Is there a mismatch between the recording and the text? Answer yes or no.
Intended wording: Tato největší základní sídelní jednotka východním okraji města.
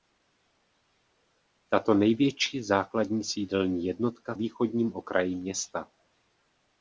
no